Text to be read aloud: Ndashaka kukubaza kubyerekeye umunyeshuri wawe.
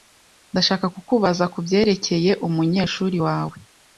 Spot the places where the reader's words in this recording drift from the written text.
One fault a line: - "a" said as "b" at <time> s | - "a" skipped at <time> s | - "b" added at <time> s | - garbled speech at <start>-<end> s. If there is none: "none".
none